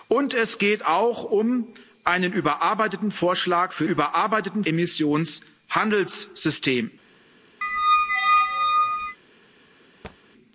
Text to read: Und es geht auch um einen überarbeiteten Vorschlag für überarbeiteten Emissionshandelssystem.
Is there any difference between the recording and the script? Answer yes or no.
no